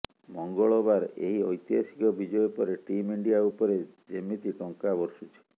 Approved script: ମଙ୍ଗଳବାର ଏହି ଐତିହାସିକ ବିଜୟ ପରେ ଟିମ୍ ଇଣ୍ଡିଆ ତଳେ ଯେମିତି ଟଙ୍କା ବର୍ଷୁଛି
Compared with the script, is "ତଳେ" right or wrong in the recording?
wrong